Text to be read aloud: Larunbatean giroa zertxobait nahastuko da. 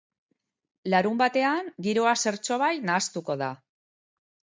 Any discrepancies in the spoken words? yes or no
no